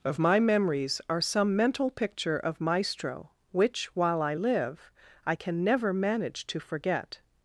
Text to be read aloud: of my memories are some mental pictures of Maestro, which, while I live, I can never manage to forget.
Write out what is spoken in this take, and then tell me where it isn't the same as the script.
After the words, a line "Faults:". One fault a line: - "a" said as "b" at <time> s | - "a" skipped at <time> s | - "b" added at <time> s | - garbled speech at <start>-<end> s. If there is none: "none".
of my memories are some mental picture of Maestro, which, while I live, I can never manage to forget.
Faults:
- "pictures" said as "picture" at 1.9 s